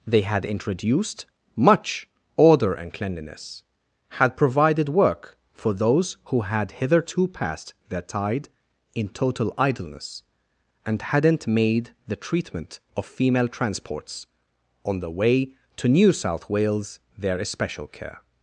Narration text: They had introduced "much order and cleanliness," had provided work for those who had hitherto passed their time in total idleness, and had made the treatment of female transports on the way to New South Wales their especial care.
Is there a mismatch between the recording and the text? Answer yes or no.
yes